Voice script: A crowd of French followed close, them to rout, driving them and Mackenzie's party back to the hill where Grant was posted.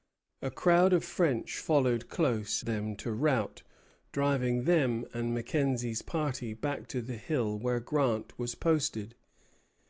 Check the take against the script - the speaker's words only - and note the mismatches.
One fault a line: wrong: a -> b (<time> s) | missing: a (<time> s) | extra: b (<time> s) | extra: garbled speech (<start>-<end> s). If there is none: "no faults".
no faults